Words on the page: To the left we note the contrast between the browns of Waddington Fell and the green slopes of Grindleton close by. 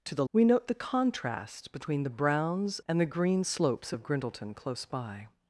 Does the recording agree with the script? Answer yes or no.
no